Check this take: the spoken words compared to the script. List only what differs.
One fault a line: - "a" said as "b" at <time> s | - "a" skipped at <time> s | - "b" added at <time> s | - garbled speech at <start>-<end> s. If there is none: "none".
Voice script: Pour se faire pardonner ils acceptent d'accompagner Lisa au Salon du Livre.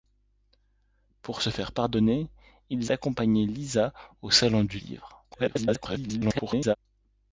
- "acceptent" skipped at 2.9 s
- garbled speech at 5.3-6.8 s